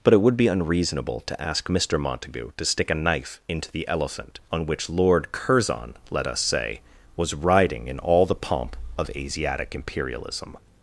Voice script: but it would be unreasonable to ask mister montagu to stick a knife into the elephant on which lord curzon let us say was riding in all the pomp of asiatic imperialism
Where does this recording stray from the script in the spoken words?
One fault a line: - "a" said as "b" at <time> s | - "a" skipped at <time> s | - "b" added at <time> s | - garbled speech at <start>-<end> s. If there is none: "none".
none